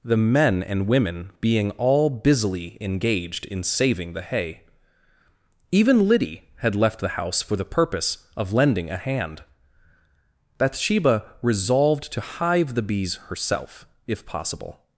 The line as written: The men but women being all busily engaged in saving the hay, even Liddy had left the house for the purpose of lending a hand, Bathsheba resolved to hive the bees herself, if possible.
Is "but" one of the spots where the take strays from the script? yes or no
yes